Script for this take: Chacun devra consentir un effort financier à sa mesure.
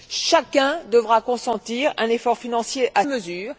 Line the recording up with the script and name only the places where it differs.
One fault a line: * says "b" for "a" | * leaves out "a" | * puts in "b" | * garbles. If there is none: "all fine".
* leaves out "sa"